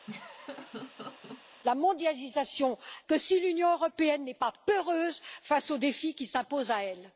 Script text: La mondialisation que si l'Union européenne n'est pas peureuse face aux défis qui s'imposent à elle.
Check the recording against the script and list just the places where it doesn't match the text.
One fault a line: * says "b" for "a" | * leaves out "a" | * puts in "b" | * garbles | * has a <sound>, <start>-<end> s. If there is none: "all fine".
* has a laugh, 0.1-1.4 s